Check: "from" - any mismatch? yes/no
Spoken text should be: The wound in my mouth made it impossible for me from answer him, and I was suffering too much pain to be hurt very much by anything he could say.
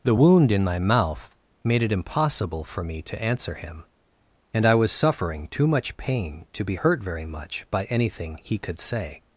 yes